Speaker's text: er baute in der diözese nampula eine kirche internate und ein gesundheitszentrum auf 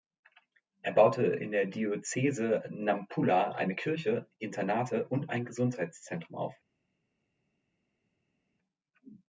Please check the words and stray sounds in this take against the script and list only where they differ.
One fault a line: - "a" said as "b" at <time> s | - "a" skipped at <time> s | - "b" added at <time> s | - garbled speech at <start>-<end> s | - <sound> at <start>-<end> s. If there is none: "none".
none